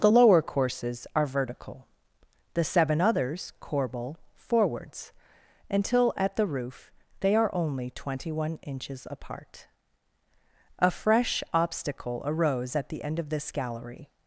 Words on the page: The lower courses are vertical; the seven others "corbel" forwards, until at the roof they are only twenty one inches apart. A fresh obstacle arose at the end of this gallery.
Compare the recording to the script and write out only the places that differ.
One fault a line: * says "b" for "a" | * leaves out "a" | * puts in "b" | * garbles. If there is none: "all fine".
all fine